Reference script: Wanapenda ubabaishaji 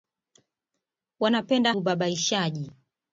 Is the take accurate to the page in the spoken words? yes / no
yes